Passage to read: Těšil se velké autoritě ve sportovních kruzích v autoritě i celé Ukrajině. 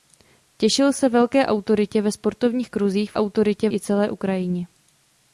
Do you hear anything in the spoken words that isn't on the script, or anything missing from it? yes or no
no